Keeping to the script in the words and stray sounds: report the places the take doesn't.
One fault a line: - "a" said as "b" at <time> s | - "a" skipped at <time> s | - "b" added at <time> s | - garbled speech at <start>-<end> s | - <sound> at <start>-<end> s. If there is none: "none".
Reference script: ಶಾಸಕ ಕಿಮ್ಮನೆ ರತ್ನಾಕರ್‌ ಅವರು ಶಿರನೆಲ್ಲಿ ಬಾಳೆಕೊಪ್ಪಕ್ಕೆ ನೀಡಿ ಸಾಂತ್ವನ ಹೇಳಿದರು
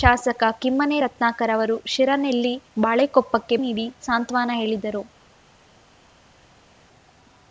none